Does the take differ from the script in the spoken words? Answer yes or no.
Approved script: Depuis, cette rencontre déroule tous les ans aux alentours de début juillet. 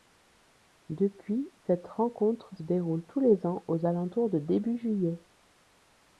no